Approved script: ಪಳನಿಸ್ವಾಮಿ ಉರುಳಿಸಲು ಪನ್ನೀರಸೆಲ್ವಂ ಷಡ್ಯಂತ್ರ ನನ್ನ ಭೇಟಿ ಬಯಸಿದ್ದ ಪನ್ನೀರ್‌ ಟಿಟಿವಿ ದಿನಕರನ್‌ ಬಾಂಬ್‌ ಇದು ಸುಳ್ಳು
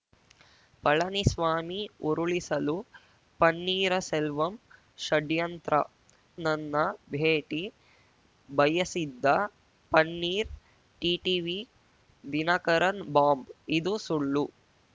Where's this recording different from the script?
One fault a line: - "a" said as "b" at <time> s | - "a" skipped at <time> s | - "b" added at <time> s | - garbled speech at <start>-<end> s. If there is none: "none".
none